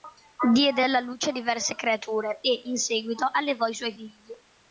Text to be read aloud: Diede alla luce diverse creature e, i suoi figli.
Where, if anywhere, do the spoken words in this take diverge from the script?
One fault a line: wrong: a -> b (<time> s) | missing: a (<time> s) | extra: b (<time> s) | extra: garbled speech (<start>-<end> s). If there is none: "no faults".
extra: in seguito allevò (2.7 s)